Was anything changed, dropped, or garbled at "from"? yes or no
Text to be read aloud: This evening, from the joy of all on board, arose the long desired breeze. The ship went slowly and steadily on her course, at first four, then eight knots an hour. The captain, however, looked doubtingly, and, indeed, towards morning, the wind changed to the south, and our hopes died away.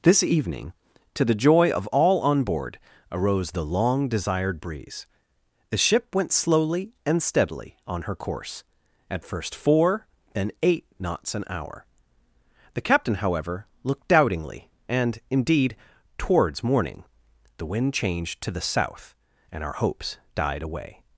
yes